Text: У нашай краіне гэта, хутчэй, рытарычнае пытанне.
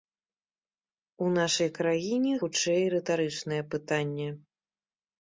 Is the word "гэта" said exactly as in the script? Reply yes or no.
no